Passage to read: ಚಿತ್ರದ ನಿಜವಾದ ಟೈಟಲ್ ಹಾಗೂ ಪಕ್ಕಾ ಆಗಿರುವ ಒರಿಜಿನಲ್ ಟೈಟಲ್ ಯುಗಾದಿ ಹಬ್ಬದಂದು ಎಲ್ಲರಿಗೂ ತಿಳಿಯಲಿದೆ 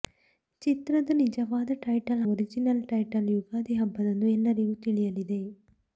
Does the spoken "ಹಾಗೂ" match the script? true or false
false